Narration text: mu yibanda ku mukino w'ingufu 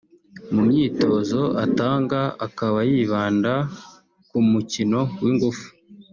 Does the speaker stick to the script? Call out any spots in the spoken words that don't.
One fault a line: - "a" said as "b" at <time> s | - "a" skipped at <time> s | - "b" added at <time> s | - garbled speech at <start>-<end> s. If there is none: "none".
- "myitozo atanga akaba" added at 0.7 s